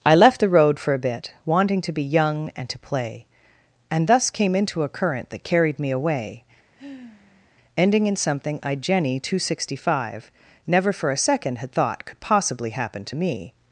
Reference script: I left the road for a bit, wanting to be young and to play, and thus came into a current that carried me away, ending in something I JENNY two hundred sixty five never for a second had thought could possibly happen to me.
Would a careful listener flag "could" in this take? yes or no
no